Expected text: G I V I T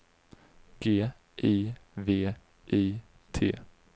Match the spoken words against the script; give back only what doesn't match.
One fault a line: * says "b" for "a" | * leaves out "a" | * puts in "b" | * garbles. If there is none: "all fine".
all fine